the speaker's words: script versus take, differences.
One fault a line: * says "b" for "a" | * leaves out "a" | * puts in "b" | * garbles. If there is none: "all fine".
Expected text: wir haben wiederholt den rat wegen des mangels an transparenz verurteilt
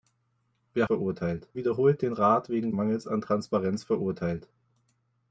* says "verurteilt" for "haben"
* leaves out "des"